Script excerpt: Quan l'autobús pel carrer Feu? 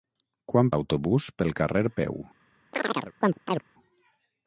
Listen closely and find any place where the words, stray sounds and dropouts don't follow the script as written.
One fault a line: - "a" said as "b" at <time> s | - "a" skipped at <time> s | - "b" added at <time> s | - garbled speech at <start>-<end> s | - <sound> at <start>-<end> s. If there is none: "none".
- chirp at 2.7-3.6 s